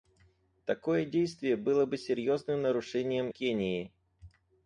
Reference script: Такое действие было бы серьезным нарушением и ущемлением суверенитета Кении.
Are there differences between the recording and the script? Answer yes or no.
yes